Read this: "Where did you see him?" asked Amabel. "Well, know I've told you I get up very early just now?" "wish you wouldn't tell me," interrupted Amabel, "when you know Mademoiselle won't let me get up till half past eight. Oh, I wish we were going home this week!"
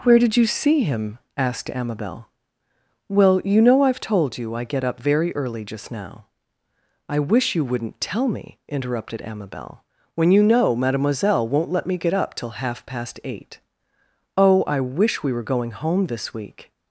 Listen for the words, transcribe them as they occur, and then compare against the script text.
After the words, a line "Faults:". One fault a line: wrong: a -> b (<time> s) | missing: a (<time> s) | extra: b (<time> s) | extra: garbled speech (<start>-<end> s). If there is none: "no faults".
"Where did you see him?" asked Amabel. "Well, you know I've told you I get up very early just now?" "I wish you wouldn't tell me," interrupted Amabel, "when you know Mademoiselle won't let me get up till half past eight. Oh, I wish we were going home this week!"
Faults:
extra: you (3.5 s)
extra: I (7.1 s)